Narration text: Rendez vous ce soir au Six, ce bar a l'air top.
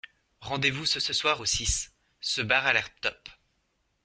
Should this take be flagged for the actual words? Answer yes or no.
yes